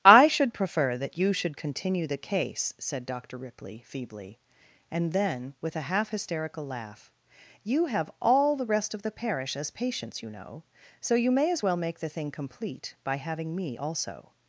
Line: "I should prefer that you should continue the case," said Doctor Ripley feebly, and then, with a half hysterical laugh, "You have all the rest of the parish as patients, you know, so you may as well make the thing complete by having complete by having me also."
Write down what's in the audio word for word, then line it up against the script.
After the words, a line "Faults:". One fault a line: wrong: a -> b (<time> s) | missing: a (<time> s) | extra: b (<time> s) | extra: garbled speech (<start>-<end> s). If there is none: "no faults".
"I should prefer that you should continue the case," said Doctor Ripley feebly, and then, with a half hysterical laugh, "You have all the rest of the parish as patients, you know, so you may as well make the thing complete by having me also."
Faults:
missing: complete by having (13.6 s)